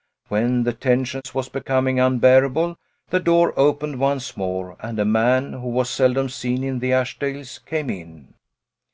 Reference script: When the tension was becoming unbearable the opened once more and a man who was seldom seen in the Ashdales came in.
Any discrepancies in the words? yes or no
yes